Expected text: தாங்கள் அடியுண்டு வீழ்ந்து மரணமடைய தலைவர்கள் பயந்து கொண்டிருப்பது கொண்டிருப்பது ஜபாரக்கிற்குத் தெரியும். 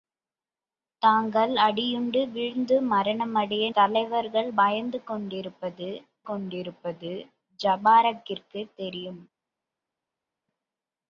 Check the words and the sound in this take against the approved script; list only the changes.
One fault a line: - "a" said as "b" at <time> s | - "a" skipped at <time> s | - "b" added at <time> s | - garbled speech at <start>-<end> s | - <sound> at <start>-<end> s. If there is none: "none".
none